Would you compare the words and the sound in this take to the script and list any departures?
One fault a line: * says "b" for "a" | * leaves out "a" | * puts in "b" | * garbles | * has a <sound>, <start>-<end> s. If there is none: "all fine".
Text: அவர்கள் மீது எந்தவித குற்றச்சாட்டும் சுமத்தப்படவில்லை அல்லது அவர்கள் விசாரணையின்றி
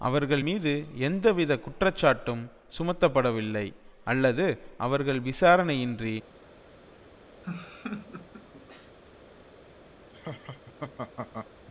* has a laugh, 7.4-9.0 s
* has a laugh, 10.1-11.5 s